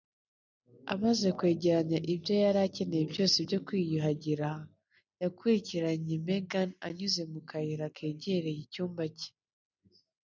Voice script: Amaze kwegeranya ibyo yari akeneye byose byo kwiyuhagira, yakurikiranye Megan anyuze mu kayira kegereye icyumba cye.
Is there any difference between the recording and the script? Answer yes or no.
no